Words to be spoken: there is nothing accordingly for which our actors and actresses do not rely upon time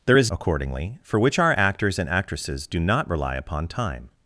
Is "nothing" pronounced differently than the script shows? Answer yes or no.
yes